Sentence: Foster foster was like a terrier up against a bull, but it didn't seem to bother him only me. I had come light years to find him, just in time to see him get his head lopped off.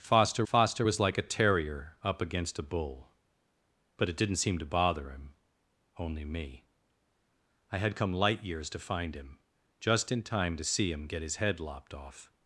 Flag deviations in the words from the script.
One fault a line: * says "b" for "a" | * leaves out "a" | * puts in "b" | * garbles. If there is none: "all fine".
all fine